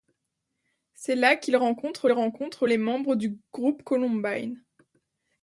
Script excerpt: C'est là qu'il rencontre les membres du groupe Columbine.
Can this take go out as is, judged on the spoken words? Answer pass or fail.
fail